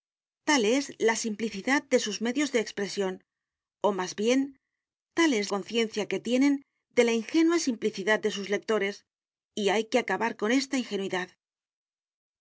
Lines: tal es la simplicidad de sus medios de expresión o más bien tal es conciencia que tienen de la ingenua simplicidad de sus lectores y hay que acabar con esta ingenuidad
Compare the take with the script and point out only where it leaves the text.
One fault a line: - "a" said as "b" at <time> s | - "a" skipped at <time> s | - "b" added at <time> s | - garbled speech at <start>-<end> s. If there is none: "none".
none